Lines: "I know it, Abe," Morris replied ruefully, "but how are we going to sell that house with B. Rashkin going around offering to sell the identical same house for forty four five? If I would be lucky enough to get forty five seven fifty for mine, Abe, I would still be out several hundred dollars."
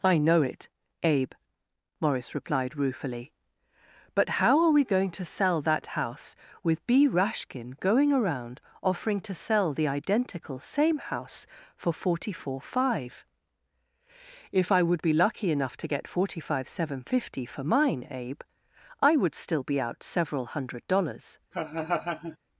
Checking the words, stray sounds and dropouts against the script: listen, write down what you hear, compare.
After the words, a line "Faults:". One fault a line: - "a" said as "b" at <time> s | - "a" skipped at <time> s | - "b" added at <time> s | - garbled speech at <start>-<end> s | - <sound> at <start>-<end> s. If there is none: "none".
"I know it, Abe," Morris replied ruefully, "but how are we going to sell that house with B. Rashkin going around offering to sell the identical same house for forty four five? If I would be lucky enough to get forty five seven fifty for mine, Abe, I would still be out several hundred dollars."
Faults:
- laugh at 21.5-22.4 s